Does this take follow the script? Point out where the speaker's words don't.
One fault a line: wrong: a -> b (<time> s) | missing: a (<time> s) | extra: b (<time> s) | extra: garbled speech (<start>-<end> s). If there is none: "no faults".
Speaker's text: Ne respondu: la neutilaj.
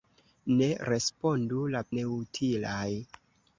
no faults